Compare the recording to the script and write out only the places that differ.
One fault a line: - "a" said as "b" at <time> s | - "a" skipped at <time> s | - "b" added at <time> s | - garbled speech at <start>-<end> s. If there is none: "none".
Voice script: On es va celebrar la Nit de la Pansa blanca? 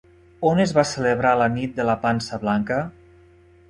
none